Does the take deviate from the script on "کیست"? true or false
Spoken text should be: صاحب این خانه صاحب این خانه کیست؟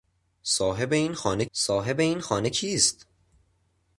false